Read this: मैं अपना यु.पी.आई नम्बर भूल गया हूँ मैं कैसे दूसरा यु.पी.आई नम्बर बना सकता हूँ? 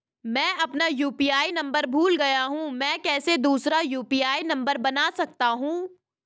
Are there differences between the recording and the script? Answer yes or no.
no